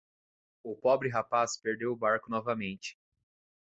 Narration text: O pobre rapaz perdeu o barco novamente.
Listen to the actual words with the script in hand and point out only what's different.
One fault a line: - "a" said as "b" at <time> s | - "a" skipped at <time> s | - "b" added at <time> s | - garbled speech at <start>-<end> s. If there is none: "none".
none